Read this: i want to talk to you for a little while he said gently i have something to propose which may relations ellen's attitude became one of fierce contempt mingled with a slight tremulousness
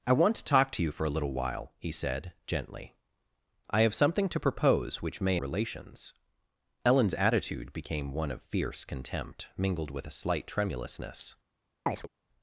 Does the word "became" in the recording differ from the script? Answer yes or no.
no